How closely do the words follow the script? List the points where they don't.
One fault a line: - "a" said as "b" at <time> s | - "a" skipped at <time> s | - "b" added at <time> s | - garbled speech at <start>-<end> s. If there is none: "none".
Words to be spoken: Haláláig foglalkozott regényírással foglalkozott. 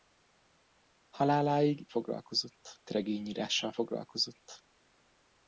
none